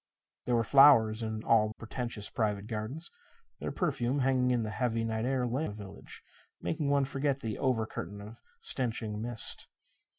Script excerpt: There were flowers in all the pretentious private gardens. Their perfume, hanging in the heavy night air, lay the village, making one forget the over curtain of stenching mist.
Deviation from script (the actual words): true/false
false